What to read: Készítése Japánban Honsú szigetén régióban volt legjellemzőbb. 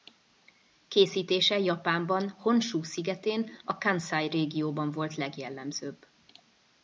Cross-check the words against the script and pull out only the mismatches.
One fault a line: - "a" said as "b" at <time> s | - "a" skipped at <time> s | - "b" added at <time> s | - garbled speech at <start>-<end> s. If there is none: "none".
- "a Kanszai" added at 3.6 s